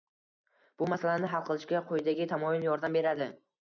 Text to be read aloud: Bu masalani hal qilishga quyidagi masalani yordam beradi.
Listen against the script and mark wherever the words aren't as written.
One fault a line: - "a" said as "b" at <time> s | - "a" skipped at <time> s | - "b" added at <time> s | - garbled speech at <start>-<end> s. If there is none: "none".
- "masalani" said as "tamoyil" at 2.3 s